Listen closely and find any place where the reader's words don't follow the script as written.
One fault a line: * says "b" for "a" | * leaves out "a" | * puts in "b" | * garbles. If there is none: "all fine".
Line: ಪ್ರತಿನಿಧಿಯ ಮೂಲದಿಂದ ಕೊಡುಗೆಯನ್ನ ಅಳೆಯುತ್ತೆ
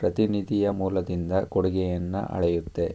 all fine